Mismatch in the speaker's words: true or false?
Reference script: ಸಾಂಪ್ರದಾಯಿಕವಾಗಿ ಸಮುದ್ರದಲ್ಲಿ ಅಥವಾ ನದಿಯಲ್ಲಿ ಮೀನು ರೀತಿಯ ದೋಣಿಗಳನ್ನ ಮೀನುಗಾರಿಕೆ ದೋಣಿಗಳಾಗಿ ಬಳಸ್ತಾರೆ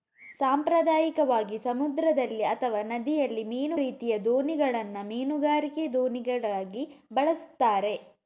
false